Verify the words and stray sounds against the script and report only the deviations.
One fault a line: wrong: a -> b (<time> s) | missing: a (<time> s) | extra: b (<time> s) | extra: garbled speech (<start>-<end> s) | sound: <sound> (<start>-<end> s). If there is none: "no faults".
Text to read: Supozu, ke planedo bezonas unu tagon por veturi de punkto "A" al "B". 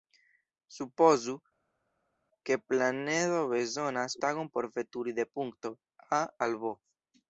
missing: unu (4.1 s)